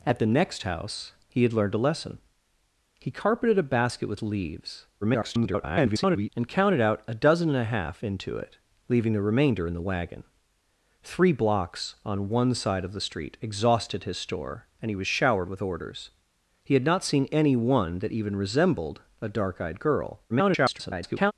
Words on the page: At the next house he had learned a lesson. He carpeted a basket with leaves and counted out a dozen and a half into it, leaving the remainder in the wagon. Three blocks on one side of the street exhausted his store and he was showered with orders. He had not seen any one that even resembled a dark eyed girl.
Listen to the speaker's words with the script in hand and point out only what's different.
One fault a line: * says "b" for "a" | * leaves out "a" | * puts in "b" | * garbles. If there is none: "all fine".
* garbles
* garbles